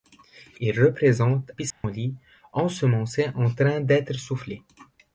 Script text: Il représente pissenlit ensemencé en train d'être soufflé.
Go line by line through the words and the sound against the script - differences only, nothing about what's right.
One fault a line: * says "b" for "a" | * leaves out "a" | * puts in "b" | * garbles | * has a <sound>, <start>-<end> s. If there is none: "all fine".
* has a dropout, 1.7-1.8 s